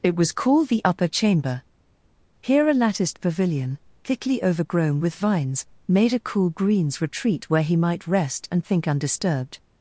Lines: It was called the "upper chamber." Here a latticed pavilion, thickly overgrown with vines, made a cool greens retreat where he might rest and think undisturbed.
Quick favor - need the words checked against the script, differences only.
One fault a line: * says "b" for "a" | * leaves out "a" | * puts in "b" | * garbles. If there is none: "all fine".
all fine